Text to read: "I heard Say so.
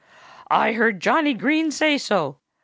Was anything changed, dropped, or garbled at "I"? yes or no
no